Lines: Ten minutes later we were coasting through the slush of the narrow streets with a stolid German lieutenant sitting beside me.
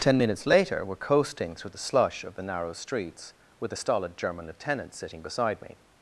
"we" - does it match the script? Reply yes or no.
no